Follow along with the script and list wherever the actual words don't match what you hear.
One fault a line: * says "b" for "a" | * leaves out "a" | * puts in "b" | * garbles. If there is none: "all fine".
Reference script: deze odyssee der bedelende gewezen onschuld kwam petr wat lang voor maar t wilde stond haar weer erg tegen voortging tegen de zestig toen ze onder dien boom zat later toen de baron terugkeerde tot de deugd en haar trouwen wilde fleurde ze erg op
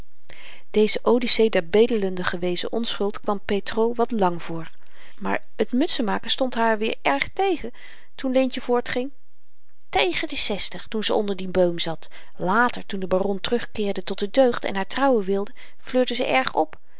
* says "mutsenmaken" for "wilde"
* puts in "toen leentje"